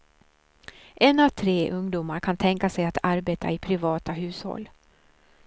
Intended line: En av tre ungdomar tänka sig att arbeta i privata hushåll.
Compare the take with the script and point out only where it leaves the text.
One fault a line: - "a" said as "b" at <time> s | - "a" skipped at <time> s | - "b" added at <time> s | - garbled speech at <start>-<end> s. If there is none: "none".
- "kan" added at 2.2 s